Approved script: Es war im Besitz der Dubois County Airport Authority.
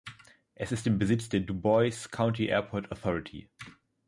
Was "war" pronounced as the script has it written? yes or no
no